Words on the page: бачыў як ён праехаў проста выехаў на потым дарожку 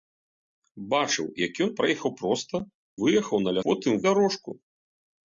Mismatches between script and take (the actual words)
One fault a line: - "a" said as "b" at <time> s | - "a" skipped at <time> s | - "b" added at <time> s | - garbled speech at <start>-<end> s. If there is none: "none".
none